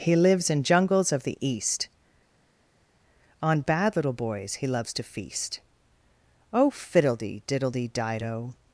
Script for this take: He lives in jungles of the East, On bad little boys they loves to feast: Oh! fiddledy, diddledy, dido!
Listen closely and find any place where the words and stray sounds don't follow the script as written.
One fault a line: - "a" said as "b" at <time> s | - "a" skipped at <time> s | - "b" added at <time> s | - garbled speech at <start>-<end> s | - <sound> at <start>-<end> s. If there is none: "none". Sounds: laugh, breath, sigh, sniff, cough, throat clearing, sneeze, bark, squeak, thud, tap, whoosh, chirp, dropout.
- "they" said as "he" at 4.5 s